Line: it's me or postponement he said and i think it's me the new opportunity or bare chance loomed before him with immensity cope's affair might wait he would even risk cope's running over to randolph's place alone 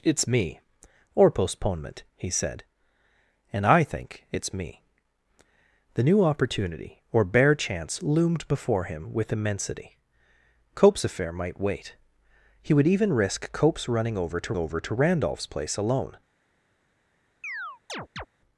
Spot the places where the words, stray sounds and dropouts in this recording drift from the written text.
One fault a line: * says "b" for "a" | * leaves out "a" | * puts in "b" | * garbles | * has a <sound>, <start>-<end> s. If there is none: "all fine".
* puts in "over to"
* has a chirp, 17.4-18.3 s